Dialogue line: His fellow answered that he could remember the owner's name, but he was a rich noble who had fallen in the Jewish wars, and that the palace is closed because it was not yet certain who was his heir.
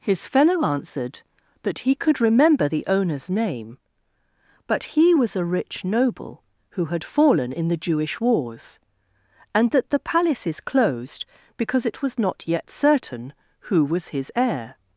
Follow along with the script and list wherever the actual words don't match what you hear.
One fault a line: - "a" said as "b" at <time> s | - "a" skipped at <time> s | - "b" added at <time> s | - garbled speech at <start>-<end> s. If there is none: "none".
none